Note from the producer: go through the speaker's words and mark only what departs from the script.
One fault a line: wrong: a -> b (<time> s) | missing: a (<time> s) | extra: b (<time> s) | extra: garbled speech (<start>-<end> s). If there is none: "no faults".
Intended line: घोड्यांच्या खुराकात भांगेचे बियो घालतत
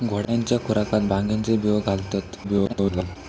extra: garbled speech (2.4-3.2 s)